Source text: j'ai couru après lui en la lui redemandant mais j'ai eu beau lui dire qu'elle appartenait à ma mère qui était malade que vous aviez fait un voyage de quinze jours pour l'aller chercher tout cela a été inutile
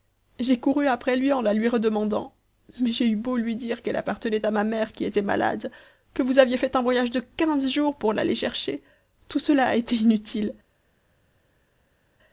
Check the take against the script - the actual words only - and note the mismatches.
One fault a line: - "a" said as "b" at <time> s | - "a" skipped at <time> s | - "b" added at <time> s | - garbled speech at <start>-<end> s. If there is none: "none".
none